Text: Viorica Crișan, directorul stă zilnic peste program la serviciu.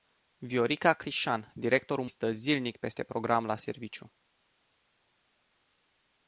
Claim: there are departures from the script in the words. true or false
false